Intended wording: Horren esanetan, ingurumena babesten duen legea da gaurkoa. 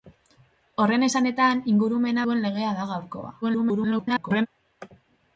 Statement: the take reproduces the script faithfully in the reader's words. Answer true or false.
false